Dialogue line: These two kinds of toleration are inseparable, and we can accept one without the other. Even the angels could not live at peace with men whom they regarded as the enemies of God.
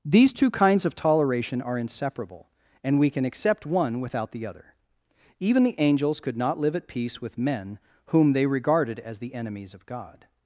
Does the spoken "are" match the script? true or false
true